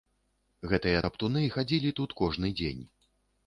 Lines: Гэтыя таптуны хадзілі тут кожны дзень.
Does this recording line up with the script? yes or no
yes